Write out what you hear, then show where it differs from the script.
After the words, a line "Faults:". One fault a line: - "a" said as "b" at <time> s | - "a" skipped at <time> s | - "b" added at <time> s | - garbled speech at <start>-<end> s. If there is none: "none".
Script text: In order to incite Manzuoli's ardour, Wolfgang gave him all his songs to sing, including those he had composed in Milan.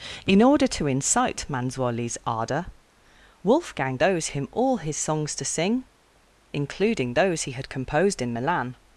In order to incite Manzuoli's ardour, Wolfgang those him all his songs to sing, including those he had composed in Milan.
Faults:
- "gave" said as "those" at 4.0 s